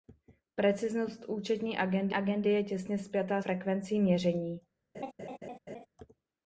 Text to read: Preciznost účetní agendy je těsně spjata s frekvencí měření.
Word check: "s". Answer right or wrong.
wrong